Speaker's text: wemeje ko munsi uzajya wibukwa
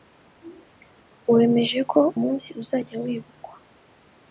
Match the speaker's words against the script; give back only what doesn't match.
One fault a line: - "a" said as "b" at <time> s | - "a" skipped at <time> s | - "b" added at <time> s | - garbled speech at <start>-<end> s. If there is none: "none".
none